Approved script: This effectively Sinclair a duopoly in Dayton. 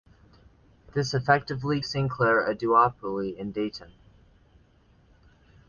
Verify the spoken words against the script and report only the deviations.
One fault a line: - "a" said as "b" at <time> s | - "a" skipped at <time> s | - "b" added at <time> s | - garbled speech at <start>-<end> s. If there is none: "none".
none